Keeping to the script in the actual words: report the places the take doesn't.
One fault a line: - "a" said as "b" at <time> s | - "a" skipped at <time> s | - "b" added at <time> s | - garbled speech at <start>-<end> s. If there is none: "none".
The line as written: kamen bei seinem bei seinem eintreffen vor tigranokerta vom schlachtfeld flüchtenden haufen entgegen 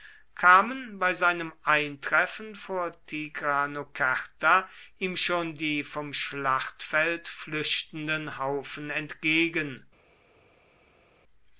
- "bei seinem" skipped at 1.5 s
- "ihm schon die" added at 5.0 s